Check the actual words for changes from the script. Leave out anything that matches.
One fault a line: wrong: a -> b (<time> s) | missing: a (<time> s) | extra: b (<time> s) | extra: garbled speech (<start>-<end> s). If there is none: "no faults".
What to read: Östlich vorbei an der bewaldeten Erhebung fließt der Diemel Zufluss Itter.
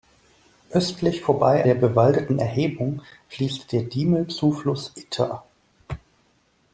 missing: an (1.6 s)